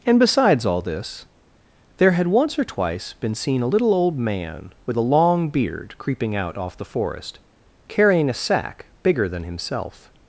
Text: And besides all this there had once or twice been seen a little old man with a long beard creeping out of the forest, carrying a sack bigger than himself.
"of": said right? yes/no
no